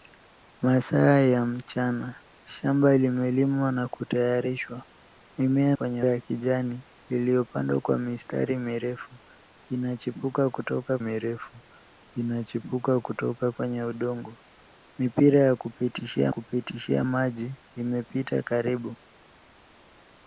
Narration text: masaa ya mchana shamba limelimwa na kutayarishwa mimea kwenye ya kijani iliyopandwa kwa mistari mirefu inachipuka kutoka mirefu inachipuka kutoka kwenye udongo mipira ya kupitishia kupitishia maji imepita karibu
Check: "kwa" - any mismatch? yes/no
no